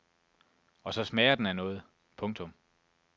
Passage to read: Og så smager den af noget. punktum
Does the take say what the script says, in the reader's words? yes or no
yes